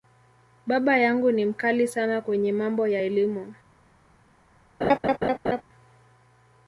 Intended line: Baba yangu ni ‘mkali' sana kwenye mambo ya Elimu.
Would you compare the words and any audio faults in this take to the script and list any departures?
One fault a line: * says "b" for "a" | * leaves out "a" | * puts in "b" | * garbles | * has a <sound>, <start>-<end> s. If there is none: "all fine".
* has a laugh, 4.8-5.6 s